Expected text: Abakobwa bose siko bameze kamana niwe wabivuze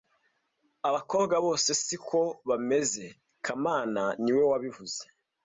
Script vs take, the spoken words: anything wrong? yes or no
no